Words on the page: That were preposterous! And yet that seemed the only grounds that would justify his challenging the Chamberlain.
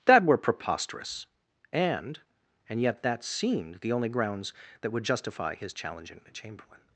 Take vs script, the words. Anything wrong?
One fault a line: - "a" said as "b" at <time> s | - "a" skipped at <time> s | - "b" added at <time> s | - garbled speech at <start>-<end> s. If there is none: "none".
- "And" added at 2.7 s